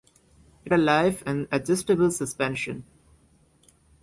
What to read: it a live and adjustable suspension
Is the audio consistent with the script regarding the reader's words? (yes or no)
yes